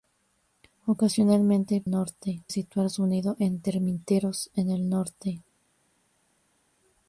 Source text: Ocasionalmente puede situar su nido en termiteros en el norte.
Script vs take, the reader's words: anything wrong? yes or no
yes